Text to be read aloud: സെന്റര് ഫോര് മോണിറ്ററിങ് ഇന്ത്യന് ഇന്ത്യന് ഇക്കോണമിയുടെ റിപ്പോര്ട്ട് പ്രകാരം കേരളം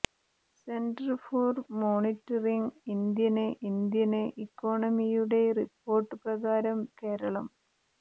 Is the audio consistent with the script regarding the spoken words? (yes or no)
yes